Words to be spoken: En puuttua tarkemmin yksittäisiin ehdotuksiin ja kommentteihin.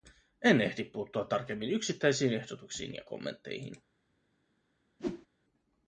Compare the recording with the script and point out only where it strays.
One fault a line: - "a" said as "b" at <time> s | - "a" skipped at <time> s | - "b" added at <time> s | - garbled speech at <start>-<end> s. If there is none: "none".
- "ehdi" added at 0.6 s